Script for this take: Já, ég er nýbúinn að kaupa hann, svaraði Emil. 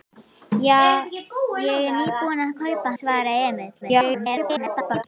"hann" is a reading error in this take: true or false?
true